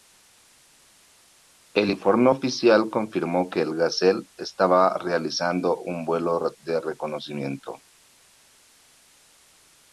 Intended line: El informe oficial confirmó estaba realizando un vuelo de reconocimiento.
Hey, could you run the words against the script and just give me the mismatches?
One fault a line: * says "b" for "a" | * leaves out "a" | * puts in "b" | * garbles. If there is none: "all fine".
* puts in "que el Gazelle"